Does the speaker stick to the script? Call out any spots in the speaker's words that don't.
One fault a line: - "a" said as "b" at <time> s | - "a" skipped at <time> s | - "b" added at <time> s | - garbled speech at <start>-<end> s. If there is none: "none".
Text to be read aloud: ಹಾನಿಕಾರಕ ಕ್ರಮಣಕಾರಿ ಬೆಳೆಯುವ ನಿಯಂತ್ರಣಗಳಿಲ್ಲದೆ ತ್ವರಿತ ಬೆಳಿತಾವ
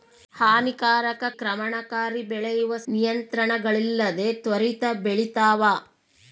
none